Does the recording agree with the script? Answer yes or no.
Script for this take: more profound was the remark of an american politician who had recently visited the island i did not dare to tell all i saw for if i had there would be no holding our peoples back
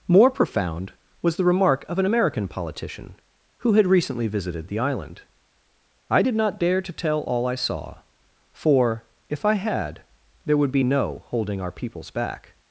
yes